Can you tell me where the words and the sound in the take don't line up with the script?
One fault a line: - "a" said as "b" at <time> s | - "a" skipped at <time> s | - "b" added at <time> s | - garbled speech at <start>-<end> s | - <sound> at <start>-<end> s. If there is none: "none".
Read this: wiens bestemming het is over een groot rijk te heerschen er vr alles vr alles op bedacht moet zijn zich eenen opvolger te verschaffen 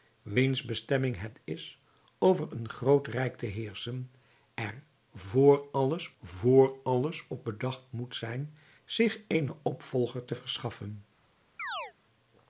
- chirp at 11.6-11.9 s